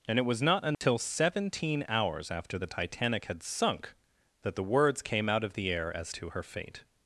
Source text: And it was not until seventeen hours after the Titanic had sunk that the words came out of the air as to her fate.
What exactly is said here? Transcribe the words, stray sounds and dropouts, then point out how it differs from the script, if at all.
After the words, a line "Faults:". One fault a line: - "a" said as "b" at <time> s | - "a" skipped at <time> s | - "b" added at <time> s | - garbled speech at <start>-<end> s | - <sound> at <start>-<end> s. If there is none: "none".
And it was not until seventeen hours after the Titanic had sunk that the words came out of the air as to her fate.
Faults:
- dropout at 0.7-0.8 s